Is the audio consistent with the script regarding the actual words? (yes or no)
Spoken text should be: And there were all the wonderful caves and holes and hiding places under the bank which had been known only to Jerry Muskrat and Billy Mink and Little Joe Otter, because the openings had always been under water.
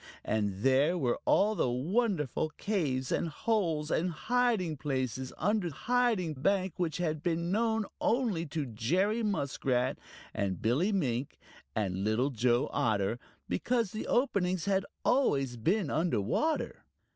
no